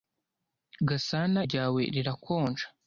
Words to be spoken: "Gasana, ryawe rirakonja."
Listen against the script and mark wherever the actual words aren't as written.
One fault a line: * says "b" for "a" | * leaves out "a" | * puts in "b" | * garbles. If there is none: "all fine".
all fine